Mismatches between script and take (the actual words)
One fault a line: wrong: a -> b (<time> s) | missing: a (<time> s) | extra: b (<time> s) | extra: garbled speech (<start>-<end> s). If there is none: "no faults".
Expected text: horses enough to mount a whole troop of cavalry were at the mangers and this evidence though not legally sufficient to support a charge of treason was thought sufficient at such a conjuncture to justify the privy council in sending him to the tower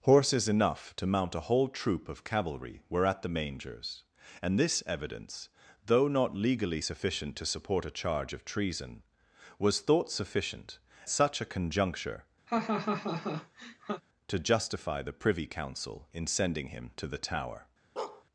missing: at (10.8 s)